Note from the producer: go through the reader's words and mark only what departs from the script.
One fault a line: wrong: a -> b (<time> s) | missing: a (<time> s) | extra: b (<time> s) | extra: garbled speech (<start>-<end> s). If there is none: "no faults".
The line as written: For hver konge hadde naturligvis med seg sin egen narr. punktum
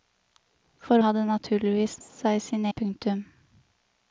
missing: hver konge (1.0 s)
missing: med (2.0 s)
missing: egen narr (2.6 s)